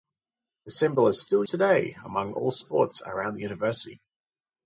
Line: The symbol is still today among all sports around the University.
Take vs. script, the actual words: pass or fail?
pass